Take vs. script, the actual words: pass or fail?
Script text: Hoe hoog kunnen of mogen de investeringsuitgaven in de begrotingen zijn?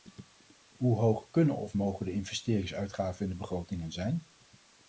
pass